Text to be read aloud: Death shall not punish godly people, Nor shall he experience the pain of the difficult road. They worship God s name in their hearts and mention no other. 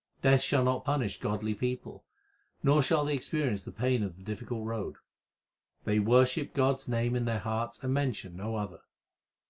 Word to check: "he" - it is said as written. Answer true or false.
false